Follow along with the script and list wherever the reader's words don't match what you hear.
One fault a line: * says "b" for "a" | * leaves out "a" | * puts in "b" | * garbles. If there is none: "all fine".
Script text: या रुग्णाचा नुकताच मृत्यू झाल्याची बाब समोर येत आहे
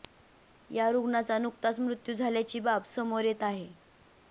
all fine